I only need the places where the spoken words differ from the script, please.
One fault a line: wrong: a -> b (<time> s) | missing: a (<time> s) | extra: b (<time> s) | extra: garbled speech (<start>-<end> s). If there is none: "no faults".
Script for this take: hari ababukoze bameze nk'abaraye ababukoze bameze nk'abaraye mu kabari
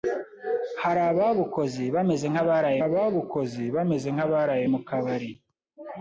no faults